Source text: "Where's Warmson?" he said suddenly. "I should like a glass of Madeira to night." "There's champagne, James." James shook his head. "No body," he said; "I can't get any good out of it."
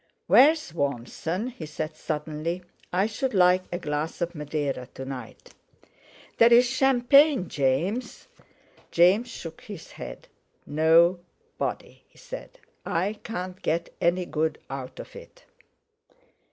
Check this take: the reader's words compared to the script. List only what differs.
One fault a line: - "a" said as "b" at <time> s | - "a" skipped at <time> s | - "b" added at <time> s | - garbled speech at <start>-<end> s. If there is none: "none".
none